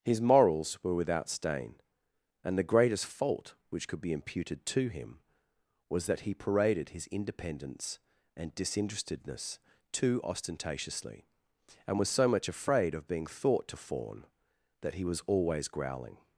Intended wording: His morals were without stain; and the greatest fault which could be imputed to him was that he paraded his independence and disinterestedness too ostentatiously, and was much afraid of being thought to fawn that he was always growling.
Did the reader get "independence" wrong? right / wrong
right